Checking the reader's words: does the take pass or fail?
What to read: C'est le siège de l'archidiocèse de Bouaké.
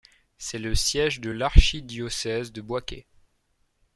pass